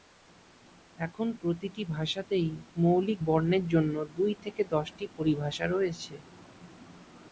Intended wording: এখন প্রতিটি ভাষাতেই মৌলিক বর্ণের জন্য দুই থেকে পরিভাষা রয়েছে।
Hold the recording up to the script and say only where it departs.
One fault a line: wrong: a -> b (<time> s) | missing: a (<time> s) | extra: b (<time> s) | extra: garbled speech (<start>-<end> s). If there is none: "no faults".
extra: দশটি (4.7 s)